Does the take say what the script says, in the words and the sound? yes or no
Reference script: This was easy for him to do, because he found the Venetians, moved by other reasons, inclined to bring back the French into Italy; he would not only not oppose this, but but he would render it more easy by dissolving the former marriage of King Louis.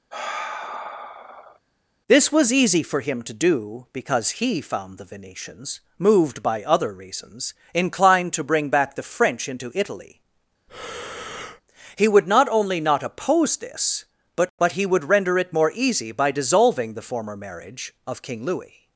no